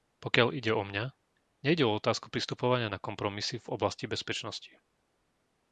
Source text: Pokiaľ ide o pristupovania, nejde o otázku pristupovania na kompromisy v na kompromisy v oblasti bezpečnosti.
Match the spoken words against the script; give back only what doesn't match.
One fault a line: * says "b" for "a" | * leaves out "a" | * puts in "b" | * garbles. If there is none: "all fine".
* says "mňa" for "pristupovania"
* leaves out "na kompromisy v"